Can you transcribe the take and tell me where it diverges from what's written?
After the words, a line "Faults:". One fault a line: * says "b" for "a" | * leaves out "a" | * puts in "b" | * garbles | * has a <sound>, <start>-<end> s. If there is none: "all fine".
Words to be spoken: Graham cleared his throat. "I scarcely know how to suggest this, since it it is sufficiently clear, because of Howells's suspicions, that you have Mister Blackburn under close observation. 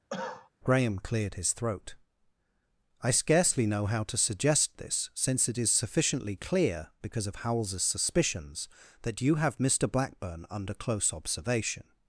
Graham cleared his throat. "I scarcely know how to suggest this, since it is sufficiently clear, because of Howells's suspicions, that you have Mister Blackburn under close observation.
Faults:
* has a cough, 0.1-0.5 s
* leaves out "it"